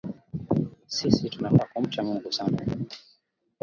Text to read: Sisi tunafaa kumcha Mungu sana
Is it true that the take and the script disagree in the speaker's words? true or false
false